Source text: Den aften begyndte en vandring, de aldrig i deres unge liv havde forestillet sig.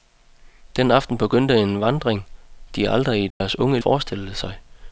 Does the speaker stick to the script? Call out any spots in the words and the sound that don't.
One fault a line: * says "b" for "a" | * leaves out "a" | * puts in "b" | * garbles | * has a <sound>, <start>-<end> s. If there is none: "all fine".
* has a dropout, 3.3-3.4 s
* leaves out "liv havde"